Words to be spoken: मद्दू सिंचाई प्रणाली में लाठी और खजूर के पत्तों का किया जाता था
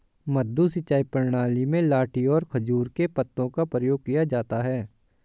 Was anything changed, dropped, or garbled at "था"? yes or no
yes